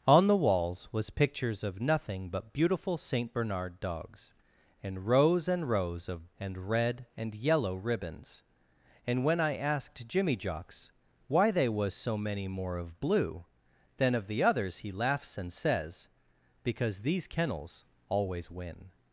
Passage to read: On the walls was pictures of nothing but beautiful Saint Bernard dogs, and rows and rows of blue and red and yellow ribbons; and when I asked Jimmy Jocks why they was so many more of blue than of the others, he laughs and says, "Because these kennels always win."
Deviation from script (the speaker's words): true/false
true